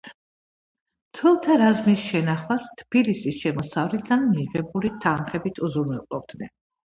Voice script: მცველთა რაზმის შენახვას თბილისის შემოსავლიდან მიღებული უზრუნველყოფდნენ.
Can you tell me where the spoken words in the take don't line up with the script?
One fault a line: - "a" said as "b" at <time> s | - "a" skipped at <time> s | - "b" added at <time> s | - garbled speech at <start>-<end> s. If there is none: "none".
- "თანხებით" added at 5.0 s